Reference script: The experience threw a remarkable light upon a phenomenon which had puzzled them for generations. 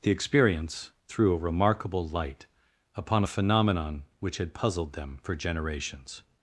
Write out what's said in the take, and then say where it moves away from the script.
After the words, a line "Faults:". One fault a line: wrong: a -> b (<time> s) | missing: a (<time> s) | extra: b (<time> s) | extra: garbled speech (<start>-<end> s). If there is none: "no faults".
The experience threw a remarkable light upon a phenomenon which had puzzled them for generations.
Faults:
no faults